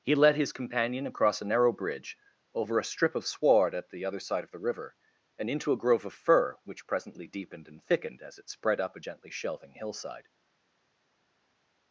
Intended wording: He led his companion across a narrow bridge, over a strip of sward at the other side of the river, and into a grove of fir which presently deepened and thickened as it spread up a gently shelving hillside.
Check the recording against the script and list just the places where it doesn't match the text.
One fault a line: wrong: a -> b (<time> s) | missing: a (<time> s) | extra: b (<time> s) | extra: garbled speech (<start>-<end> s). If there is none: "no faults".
no faults